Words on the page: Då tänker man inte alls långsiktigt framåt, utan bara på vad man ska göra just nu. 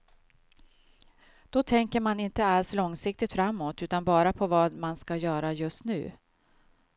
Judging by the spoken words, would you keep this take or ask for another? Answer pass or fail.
pass